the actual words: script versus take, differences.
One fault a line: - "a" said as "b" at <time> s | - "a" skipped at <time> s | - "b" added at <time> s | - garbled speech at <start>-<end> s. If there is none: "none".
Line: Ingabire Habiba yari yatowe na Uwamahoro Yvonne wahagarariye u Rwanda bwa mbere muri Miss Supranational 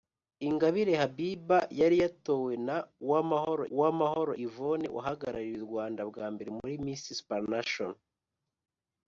- "Uwamahoro" added at 3.7 s